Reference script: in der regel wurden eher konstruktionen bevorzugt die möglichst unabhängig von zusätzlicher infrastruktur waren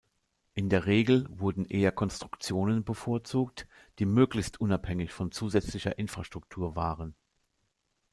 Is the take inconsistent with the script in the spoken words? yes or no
no